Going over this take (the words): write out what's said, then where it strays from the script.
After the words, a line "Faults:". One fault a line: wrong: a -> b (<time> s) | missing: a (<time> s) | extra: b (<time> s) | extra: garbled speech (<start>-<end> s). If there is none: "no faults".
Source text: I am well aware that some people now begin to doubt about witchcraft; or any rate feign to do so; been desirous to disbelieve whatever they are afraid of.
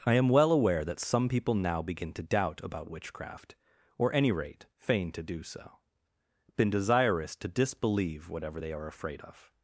I am well aware that some people now begin to doubt about witchcraft; or any rate feign to do so; been desirous to disbelieve whatever they are afraid of.
Faults:
no faults